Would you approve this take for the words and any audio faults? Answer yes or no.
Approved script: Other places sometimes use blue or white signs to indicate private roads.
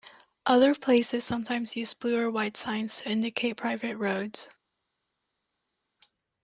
yes